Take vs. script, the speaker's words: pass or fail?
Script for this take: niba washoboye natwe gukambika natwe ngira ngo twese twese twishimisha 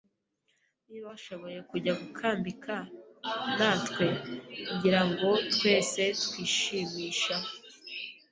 fail